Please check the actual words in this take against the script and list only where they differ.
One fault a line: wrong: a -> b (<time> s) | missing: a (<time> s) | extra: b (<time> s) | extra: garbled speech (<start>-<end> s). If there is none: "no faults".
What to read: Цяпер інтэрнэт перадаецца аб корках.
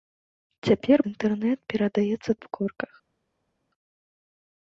no faults